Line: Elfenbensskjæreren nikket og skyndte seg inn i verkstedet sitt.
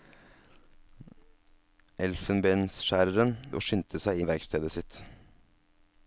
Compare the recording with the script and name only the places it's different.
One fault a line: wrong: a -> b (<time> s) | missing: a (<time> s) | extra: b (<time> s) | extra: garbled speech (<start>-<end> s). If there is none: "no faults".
missing: nikket (3.4 s)
missing: inn (4.2 s)